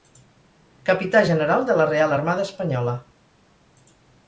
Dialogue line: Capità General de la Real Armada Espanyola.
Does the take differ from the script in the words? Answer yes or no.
no